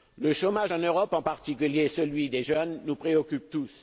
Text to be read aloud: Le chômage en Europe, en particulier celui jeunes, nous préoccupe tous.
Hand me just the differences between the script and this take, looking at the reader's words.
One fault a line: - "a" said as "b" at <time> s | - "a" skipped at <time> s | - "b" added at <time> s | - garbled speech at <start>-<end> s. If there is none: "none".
- "des" added at 2.3 s